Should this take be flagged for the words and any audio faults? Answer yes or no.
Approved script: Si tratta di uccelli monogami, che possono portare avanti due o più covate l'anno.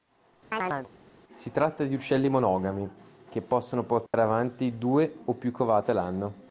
yes